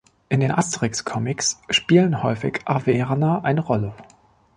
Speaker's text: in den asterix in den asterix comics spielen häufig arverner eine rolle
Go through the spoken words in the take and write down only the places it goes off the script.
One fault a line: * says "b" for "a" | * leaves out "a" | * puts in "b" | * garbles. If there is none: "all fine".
* leaves out "in den asterix"